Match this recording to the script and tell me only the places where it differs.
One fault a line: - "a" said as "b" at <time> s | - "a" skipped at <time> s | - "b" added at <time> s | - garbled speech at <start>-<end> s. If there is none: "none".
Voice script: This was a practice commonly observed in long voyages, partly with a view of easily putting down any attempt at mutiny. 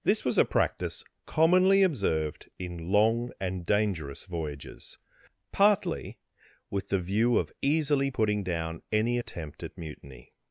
- "and dangerous" added at 3.4 s
- "a" said as "the" at 6.9 s